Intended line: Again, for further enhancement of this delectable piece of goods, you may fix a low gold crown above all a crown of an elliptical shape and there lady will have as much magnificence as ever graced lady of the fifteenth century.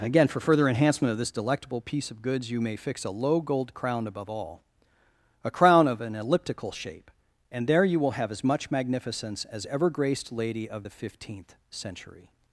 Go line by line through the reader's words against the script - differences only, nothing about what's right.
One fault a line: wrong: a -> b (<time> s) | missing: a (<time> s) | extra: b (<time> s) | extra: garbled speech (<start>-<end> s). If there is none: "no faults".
wrong: lady -> you (7.8 s)